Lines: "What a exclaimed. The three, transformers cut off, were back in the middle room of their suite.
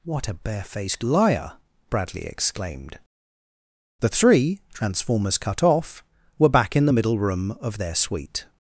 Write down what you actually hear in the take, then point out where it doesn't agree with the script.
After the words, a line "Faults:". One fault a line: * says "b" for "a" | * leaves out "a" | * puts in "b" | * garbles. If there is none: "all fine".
"What a barefaced liar!" Bradley exclaimed. The three, transformers cut off, were back in the middle room of their suite.
Faults:
* puts in "barefaced liar Bradley"